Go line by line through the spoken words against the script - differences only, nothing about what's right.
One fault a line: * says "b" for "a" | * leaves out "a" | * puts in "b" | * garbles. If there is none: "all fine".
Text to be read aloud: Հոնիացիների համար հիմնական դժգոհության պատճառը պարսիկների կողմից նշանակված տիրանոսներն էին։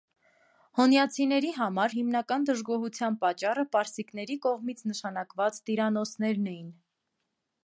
all fine